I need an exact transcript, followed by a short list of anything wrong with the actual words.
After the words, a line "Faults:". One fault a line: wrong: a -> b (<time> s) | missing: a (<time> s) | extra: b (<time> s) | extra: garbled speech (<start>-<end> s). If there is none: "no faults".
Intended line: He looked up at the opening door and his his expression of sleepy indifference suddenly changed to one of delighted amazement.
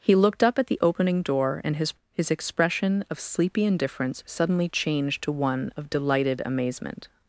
He looked up at the opening door and his his expression of sleepy indifference suddenly changed to one of delighted amazement.
Faults:
no faults